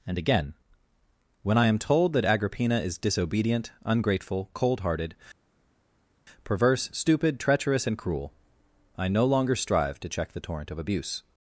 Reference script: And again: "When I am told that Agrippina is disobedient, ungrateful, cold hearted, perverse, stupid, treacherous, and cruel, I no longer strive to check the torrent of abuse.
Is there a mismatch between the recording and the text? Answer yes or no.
no